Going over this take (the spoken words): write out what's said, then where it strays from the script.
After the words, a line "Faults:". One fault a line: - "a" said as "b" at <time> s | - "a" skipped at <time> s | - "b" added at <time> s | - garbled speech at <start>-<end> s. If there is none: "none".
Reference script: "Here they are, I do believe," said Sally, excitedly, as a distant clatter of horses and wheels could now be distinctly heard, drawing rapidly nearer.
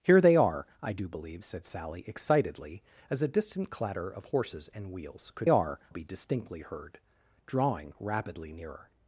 "Here they are, I do believe," said Sally, excitedly, as a distant clatter of horses and wheels could are be distinctly heard, drawing rapidly nearer.
Faults:
- "now" said as "are" at 5.5 s